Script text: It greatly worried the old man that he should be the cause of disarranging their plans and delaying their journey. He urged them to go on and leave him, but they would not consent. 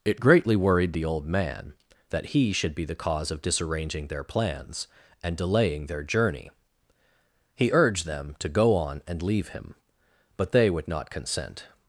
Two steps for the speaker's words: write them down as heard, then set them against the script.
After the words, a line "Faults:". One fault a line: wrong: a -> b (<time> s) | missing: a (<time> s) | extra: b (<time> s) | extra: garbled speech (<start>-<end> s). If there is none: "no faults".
It greatly worried the old man that he should be the cause of disarranging their plans and delaying their journey. He urged them to go on and leave him, but they would not consent.
Faults:
no faults